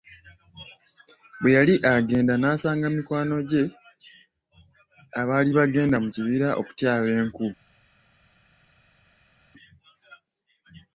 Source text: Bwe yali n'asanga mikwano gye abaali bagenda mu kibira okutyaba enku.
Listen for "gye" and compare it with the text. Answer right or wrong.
right